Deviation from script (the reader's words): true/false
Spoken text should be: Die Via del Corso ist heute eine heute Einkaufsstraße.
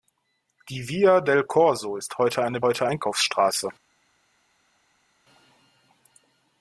false